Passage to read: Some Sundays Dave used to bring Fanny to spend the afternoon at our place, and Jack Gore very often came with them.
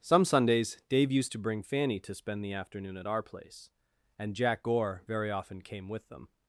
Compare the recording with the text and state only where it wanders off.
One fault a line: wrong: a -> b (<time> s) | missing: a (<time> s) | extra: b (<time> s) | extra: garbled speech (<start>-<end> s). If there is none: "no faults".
no faults